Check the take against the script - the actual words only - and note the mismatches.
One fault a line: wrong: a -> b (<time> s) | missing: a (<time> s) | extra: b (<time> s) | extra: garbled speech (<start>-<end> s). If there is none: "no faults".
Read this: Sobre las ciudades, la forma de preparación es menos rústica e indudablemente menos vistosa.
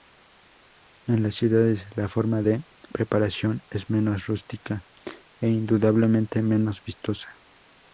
wrong: Sobre -> En (1.1 s)